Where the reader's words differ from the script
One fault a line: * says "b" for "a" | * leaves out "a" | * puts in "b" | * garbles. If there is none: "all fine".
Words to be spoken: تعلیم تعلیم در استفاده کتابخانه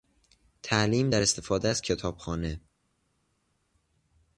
* leaves out "تعلیم"
* puts in "از"